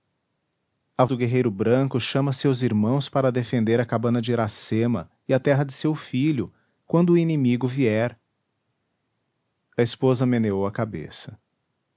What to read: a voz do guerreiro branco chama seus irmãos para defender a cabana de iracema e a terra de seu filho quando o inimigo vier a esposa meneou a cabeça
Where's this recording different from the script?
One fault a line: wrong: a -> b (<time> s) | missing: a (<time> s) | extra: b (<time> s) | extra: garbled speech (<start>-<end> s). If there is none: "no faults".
missing: voz (1.1 s)